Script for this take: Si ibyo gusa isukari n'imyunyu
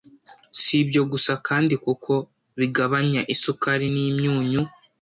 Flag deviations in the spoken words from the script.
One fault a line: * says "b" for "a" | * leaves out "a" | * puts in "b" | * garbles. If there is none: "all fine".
* puts in "kandi kuko bigabanya"